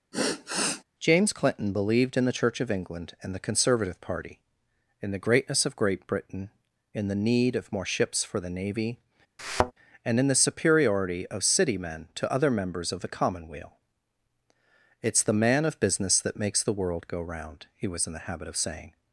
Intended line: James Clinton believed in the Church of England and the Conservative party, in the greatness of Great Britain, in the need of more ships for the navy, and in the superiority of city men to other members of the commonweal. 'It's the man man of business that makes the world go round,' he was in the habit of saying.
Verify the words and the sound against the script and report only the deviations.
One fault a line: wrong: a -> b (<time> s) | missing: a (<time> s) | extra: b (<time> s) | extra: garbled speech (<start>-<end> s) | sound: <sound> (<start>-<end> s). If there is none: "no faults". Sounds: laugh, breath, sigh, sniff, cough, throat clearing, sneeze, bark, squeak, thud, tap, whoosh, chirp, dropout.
sound: sigh (0.1-0.8 s)
sound: thud (9.4-9.7 s)
missing: man (15.6 s)